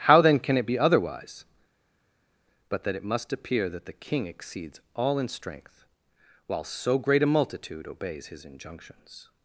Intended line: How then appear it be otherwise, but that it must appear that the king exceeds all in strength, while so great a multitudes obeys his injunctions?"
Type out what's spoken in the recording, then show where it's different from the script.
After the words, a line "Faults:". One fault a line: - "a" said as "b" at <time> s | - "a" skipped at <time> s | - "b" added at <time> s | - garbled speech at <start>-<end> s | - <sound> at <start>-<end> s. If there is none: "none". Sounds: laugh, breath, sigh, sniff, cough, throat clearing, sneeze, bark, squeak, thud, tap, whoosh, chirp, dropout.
How then can it be otherwise, but that it must appear that the king exceeds all in strength, while so great a multitude obeys his injunctions?"
Faults:
- "appear" said as "can" at 0.4 s
- "multitudes" said as "multitude" at 7.3 s